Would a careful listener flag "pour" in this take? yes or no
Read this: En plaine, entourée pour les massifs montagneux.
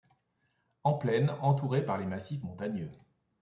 yes